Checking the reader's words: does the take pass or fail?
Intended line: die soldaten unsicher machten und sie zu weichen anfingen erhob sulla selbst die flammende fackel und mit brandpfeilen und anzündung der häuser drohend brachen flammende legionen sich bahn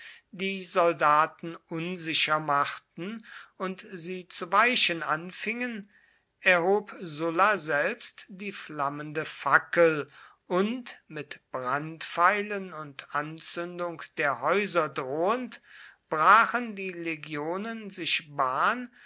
fail